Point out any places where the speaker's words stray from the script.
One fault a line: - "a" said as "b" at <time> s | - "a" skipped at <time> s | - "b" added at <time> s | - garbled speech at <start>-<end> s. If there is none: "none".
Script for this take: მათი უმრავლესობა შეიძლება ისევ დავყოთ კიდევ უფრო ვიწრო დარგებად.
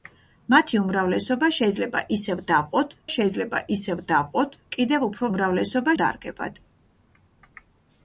- "შეიძლება ისევ დავყოთ" added at 3.1 s
- "ვიწრო" said as "უმრავლესობა" at 5.3 s